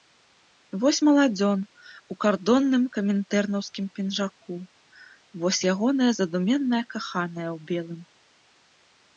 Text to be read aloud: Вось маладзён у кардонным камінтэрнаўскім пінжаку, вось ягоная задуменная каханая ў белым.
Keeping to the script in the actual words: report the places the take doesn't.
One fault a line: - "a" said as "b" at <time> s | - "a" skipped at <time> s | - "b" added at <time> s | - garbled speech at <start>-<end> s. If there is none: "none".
none